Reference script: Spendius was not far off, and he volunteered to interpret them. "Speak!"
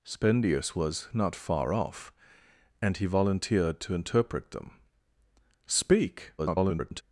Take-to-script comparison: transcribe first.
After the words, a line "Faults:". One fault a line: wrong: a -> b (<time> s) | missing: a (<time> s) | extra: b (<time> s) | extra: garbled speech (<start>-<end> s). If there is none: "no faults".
Spendius was not far off, and he volunteered to interpret them. "Speak!" [garbled]
Faults:
extra: garbled speech (6.4-7.0 s)